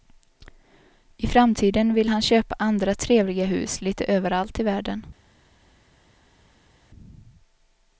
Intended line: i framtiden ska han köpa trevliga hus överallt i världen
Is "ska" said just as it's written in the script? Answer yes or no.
no